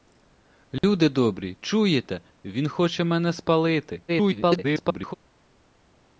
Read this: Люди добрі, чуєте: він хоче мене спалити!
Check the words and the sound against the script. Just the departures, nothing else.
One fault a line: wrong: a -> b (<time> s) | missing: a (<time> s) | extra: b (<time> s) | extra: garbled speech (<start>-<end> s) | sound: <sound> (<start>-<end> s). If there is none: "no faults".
sound: dropout (0.8-0.8 s)
extra: garbled speech (4.1-5.1 s)